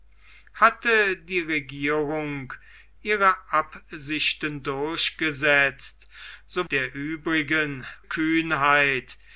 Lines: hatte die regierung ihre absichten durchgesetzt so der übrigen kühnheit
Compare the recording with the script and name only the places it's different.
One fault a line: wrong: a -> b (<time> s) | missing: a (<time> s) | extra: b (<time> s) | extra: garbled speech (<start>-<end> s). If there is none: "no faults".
no faults